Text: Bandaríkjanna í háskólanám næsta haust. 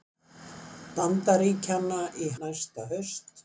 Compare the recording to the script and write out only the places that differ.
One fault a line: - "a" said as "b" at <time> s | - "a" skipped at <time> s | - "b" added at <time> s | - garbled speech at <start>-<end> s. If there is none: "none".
- "háskólanám" skipped at 2.3 s